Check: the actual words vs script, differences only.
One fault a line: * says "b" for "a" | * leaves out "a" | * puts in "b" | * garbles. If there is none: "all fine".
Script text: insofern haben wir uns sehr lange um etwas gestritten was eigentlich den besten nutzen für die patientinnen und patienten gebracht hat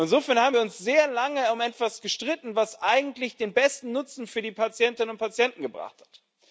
all fine